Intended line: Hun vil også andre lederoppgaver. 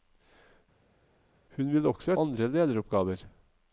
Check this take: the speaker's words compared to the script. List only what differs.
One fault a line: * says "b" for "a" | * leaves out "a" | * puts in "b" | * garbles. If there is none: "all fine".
all fine